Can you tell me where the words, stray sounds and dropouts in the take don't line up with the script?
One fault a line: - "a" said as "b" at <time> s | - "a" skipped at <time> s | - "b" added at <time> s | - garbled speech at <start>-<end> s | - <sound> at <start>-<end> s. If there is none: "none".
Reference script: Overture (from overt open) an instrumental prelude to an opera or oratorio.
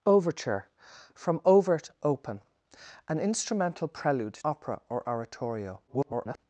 - "to an" skipped at 4.3 s
- garbled speech at 5.9-6.4 s